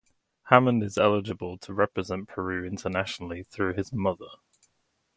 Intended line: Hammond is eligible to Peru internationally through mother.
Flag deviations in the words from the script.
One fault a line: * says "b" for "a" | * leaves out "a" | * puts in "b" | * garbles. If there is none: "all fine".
* puts in "represent"
* puts in "his"